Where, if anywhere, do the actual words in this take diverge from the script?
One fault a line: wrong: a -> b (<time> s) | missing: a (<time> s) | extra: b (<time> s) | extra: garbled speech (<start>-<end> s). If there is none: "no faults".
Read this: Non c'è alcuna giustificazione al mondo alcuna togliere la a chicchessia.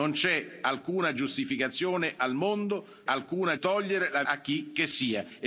no faults